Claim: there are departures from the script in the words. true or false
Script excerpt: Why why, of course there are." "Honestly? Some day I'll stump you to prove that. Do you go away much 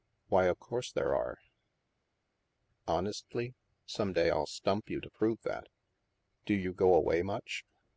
true